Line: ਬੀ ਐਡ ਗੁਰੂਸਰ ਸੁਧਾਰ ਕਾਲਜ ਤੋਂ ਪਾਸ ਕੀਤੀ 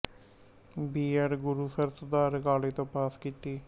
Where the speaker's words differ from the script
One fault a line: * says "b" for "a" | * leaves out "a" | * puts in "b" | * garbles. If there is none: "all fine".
all fine